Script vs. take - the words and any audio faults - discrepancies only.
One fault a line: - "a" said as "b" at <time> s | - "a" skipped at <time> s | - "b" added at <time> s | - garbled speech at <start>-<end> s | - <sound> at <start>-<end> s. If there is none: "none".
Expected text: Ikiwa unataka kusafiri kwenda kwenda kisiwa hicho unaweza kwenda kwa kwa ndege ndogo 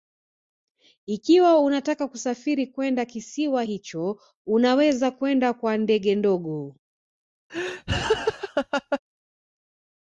- "kwenda" skipped at 3.0 s
- "kwa" skipped at 5.8 s
- laugh at 7.5-9.0 s